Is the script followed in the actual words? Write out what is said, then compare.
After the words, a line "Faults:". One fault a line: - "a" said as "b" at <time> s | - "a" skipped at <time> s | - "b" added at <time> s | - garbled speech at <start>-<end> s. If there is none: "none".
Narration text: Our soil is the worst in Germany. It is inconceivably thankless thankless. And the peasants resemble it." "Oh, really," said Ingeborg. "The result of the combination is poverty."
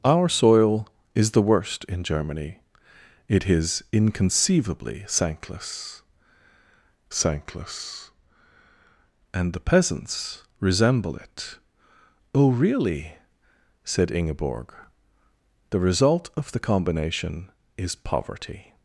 Our soil is the worst in Germany. It is inconceivably thankless thankless. And the peasants resemble it." "Oh, really," said Ingeborg. "The result of the combination is poverty."
Faults:
none